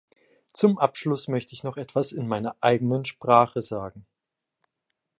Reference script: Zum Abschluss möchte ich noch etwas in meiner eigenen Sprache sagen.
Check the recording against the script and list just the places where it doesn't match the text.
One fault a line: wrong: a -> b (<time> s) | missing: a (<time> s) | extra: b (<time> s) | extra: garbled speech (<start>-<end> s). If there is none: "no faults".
no faults